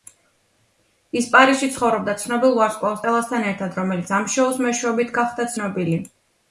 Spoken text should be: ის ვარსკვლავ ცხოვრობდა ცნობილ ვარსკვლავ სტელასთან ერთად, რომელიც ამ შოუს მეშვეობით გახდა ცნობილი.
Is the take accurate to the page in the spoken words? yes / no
no